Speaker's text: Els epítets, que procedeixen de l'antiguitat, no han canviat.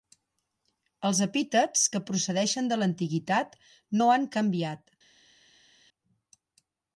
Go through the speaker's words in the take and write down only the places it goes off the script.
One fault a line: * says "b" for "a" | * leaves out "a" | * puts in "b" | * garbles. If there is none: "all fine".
all fine